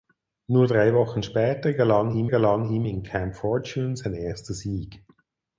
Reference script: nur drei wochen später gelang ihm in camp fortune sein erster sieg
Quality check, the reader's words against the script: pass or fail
fail